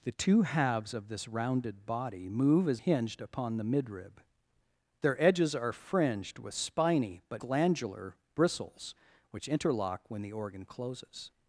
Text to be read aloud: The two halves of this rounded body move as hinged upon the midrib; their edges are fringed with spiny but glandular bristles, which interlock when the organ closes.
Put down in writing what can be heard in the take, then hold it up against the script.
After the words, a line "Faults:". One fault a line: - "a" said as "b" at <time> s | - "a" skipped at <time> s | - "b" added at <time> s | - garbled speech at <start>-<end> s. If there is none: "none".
The two halves of this rounded body move as hinged upon the midrib; their edges are fringed with spiny but glandular bristles, which interlock when the organ closes.
Faults:
none